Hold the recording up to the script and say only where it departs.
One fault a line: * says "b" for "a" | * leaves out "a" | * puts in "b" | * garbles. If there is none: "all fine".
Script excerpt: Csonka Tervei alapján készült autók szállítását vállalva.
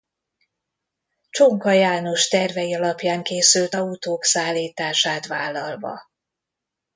* puts in "János"